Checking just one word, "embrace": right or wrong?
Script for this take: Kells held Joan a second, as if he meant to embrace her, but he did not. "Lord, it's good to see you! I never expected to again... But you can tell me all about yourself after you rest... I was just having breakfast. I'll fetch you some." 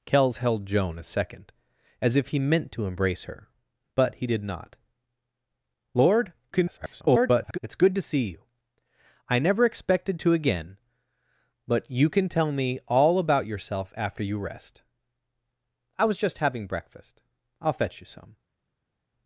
right